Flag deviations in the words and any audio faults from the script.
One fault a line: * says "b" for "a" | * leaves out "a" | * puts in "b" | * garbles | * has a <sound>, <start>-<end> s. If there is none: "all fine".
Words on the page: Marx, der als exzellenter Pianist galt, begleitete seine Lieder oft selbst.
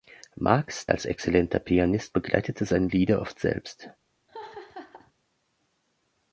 * leaves out "der"
* leaves out "galt"
* has a laugh, 4.3-5.1 s